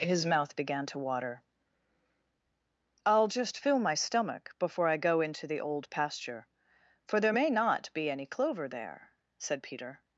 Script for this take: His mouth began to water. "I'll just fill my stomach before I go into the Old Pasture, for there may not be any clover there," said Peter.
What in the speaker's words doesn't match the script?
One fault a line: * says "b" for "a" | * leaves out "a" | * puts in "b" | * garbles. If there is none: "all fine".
all fine